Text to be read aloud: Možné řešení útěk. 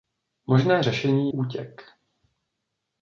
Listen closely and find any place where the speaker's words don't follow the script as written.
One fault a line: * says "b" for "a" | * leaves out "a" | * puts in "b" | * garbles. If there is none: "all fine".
all fine